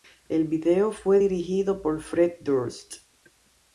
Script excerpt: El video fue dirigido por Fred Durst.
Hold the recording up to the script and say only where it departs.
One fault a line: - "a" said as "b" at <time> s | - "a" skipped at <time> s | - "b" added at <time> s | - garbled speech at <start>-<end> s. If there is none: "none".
none